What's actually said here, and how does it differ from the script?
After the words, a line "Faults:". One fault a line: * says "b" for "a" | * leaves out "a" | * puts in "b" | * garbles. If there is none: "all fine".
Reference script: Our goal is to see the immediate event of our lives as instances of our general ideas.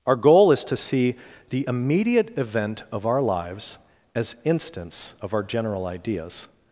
Our goal is to see the immediate event of our lives as instance of our general ideas.
Faults:
* says "instance" for "instances"